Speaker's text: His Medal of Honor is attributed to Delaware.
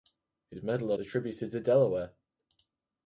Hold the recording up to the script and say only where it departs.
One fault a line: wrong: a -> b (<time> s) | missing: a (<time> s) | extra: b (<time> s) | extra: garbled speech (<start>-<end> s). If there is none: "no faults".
missing: of Honor is (0.9 s)